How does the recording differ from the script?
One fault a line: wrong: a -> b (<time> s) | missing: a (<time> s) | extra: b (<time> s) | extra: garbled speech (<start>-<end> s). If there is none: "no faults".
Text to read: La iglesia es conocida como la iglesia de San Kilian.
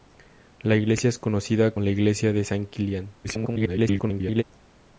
missing: como (1.8 s)
extra: garbled speech (3.2-4.4 s)